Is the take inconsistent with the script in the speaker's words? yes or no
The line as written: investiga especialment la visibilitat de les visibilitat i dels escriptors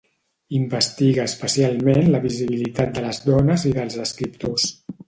yes